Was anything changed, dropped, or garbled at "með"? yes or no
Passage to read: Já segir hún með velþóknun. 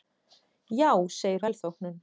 yes